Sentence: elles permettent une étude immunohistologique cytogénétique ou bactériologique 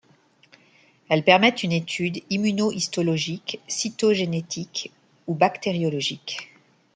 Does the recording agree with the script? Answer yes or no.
yes